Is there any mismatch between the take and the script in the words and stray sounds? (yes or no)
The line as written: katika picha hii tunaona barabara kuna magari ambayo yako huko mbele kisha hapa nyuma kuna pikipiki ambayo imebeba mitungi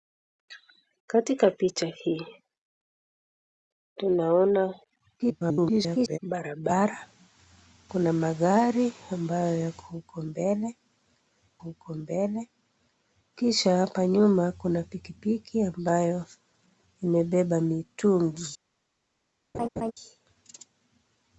yes